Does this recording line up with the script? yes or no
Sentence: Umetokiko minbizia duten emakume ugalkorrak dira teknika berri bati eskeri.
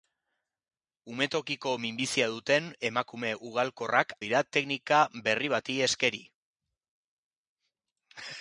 yes